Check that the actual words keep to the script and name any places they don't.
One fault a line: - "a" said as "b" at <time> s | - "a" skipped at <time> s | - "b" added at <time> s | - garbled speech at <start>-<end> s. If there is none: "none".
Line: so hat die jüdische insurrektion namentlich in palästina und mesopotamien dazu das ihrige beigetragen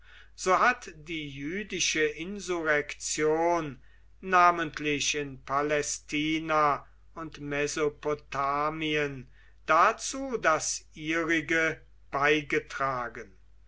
none